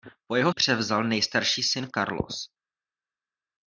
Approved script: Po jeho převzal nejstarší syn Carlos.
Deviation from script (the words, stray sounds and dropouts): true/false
false